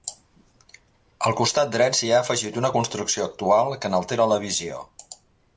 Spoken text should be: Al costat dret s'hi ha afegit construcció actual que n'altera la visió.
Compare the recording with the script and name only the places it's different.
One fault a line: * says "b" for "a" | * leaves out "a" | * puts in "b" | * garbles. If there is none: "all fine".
* puts in "una"